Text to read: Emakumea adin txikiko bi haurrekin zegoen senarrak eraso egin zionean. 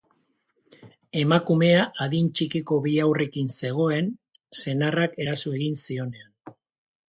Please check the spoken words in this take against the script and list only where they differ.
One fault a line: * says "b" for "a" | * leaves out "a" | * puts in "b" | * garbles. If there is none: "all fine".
all fine